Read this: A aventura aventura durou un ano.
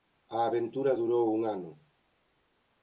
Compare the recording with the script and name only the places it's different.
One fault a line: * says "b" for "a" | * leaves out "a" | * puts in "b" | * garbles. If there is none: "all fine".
* leaves out "aventura"